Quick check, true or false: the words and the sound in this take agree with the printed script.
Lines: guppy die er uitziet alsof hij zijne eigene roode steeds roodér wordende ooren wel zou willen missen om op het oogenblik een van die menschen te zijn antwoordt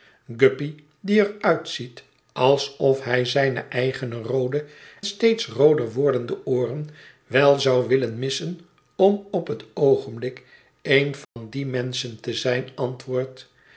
false